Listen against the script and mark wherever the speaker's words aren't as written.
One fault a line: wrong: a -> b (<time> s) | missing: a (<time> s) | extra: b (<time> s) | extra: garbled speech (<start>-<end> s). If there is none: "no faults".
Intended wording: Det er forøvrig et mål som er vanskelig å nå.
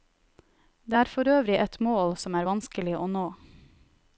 no faults